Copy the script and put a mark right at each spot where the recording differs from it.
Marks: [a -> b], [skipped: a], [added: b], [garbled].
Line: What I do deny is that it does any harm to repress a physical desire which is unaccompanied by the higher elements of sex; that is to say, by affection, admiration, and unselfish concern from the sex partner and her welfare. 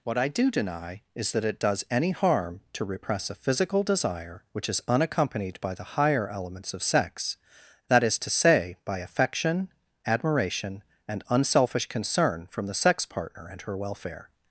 What I do deny is that it does any harm to repress a physical desire which is unaccompanied by the higher elements of sex; that is to say, by affection, admiration, and unselfish concern from the sex partner and her welfare.